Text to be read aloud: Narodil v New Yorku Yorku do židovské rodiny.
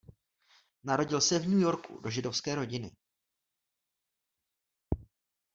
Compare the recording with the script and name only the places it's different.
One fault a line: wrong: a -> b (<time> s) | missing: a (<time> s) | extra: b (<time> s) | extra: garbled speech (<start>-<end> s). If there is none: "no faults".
extra: se (1.2 s)
missing: Yorku (2.0 s)